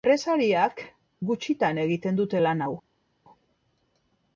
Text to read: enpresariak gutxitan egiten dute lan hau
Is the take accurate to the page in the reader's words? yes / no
yes